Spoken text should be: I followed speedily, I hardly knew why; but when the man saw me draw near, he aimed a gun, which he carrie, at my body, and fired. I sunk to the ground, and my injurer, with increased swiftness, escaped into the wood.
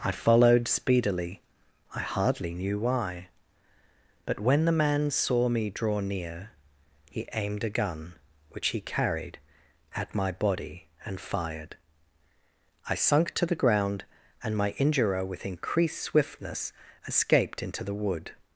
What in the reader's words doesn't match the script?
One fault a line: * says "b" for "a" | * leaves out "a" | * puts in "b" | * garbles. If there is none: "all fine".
* says "carried" for "carrie"